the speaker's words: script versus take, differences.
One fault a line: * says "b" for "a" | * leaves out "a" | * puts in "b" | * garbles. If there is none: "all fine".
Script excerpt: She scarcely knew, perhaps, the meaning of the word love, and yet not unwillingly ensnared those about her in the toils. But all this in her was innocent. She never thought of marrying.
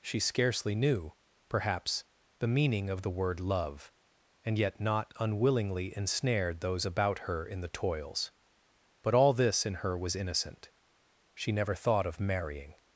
all fine